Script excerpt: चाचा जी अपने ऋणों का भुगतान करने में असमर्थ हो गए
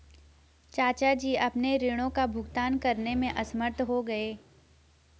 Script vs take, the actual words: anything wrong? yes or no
no